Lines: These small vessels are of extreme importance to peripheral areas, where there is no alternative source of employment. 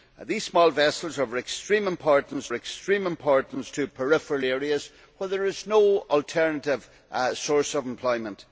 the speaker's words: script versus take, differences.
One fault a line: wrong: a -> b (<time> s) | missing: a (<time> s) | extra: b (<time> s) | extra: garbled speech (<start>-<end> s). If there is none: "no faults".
extra: extreme importance (2.5 s)